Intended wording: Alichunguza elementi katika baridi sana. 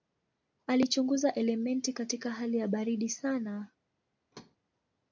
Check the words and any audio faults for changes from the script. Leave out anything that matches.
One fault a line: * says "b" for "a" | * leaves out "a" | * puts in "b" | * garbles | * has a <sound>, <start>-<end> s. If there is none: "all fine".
* puts in "hali ya"
* has a thud, 4.3-4.6 s